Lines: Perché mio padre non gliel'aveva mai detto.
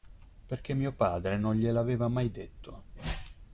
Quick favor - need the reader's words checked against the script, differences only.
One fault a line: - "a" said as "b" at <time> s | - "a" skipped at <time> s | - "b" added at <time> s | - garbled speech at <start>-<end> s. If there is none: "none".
none